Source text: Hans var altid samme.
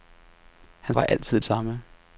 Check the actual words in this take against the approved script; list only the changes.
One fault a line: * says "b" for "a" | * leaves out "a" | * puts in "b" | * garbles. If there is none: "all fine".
all fine